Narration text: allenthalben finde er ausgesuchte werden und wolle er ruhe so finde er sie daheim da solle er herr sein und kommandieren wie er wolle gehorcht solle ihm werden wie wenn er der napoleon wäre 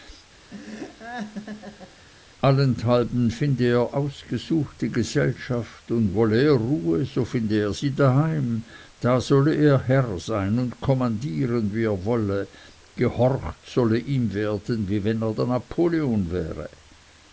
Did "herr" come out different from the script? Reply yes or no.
no